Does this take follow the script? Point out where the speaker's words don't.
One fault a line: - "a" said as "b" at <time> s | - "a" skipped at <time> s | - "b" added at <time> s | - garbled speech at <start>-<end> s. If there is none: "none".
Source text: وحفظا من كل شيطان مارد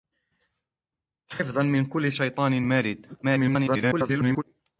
- garbled speech at 3.2-4.4 s